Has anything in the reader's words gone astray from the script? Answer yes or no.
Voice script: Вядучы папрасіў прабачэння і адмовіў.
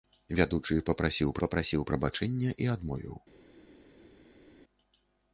yes